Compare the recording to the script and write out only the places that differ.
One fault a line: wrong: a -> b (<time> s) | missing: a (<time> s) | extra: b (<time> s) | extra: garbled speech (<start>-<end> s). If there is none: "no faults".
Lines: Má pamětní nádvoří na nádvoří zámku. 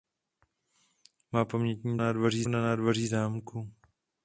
no faults